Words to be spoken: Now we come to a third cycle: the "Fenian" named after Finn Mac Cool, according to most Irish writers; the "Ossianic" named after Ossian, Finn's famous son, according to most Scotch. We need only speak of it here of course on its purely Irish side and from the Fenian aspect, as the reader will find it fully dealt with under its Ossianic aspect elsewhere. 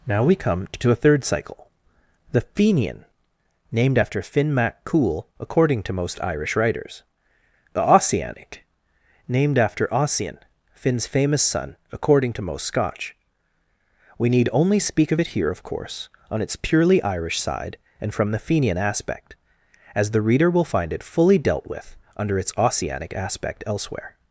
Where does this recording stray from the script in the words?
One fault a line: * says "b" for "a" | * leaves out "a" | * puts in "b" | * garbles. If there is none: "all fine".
all fine